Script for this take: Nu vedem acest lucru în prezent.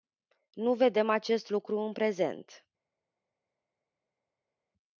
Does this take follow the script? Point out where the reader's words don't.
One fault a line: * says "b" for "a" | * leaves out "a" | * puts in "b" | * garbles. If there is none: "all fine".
all fine